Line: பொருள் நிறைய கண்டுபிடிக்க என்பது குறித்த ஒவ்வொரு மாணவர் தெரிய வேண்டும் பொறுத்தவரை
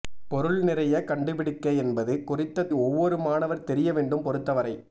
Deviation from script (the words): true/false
false